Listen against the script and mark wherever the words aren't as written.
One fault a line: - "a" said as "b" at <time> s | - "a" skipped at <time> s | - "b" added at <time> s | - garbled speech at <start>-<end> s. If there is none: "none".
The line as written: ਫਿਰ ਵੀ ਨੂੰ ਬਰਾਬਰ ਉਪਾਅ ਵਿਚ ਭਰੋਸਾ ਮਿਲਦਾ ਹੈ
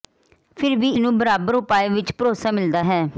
none